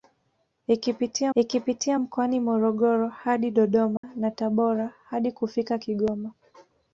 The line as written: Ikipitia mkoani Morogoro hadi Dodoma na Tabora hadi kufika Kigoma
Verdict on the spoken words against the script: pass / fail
fail